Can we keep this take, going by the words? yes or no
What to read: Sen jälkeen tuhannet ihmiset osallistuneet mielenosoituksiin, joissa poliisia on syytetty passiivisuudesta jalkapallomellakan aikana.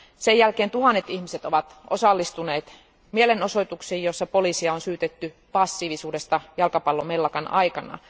no